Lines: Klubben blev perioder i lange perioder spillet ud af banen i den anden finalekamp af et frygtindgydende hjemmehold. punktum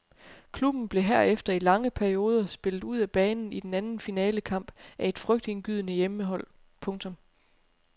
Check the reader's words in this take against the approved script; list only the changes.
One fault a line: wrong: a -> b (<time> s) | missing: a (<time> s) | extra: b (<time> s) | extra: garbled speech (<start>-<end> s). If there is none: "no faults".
wrong: perioder -> herefter (1.0 s)